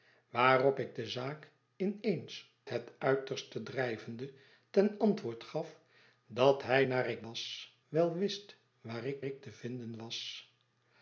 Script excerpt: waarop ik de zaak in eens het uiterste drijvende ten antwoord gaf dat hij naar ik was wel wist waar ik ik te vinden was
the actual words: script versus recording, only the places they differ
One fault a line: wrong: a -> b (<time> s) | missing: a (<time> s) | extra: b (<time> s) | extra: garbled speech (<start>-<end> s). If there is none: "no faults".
no faults